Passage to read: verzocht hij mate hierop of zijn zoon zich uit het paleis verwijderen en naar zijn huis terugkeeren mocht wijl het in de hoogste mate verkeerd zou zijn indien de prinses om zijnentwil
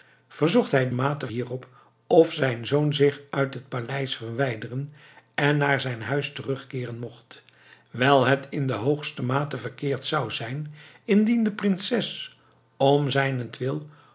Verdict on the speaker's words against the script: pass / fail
pass